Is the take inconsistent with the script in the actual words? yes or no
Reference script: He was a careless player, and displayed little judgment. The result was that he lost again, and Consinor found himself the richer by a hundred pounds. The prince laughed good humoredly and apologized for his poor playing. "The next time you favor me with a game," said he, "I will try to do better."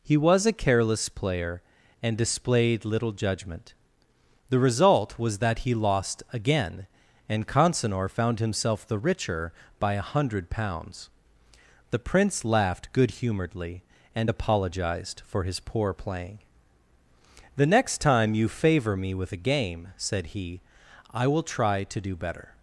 no